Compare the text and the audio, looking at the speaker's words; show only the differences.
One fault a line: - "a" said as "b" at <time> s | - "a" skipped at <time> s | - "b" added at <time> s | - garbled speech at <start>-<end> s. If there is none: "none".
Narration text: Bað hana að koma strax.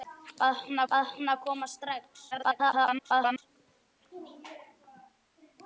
- "bað hana" added at 0.9 s
- garbled speech at 2.3-3.4 s